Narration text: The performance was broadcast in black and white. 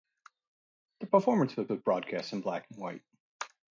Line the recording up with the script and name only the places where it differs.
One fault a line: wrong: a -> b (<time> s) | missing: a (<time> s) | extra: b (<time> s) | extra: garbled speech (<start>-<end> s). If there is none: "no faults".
extra: was (1.7 s)